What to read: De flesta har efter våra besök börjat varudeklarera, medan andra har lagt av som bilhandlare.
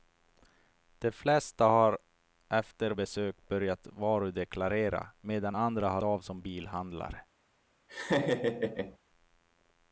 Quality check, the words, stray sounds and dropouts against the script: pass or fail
fail